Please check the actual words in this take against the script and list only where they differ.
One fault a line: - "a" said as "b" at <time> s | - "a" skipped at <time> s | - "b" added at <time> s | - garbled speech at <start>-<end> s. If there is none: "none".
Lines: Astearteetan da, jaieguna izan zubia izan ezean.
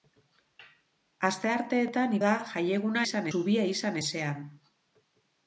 none